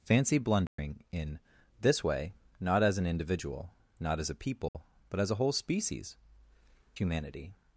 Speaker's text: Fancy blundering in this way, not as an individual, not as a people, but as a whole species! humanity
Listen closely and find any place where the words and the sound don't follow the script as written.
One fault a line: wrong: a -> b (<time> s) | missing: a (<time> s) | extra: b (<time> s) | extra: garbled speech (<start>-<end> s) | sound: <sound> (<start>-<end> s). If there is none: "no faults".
sound: dropout (0.7-0.8 s)
sound: dropout (4.7-4.7 s)